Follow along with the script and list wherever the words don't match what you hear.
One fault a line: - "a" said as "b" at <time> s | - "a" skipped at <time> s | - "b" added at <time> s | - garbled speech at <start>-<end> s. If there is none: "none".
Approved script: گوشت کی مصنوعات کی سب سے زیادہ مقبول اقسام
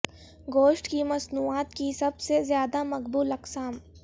none